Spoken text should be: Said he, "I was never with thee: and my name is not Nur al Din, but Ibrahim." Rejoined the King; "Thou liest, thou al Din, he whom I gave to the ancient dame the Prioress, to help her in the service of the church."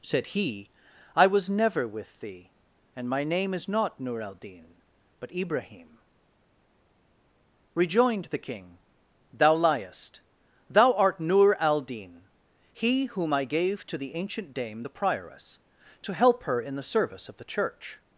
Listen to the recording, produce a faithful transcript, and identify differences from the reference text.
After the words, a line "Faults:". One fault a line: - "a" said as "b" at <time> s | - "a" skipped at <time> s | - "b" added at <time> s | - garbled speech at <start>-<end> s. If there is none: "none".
Said he, "I was never with thee: and my name is not Nur al Din, but Ibrahim." Rejoined the King; "Thou liest, thou art Nur al Din, he whom I gave to the ancient dame the Prioress, to help her in the service of the church."
Faults:
- "art Nur" added at 10.9 s